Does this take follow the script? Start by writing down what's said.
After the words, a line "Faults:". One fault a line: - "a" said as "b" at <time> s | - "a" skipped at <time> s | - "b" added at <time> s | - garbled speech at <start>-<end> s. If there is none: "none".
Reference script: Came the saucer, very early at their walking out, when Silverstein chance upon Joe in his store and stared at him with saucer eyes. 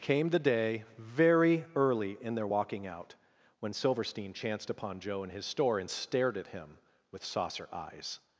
Came the day, very early in their walking out, when Silverstein chanced upon Joe in his store and stared at him with saucer eyes.
Faults:
- "saucer" said as "day" at 0.4 s
- "at" said as "in" at 2.2 s
- "chance" said as "chanced" at 4.3 s